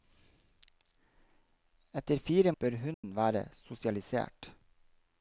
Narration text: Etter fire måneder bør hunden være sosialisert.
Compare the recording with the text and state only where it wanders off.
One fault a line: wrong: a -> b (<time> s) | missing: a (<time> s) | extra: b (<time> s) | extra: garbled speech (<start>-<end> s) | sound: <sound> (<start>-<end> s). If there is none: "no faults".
missing: måneder (2.5 s)
sound: dropout (2.9-3.0 s)